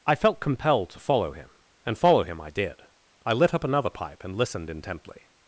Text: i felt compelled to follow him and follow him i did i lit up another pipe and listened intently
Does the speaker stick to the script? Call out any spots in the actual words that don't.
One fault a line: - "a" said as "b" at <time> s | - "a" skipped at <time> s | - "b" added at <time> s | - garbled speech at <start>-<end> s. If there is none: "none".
none